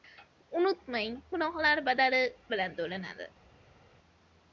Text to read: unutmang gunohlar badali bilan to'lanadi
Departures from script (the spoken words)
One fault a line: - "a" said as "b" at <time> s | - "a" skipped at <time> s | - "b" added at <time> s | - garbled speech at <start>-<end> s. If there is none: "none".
none